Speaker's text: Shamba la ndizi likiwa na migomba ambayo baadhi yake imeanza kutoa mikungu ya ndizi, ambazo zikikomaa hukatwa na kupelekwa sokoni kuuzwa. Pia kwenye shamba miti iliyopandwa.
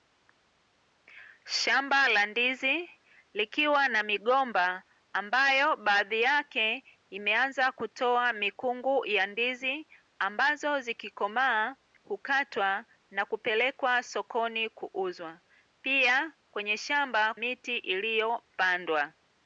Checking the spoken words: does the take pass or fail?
pass